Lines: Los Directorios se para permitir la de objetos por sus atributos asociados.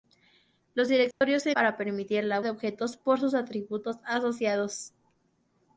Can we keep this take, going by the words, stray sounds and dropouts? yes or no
no